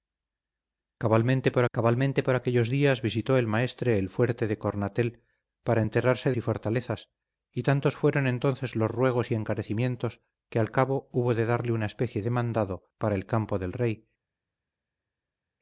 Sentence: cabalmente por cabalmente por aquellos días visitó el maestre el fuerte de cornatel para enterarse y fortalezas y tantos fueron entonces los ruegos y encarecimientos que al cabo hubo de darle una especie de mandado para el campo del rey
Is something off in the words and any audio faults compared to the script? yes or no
no